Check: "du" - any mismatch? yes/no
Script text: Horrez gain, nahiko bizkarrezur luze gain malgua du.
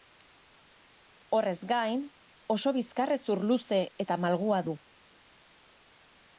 no